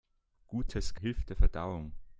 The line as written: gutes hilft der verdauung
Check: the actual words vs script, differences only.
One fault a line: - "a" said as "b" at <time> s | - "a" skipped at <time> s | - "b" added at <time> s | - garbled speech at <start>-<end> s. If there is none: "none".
none